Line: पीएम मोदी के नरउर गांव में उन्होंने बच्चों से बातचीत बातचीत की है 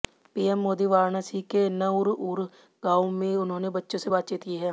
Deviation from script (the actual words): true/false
true